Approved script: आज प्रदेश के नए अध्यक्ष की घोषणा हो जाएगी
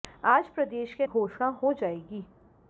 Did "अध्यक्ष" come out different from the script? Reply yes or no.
yes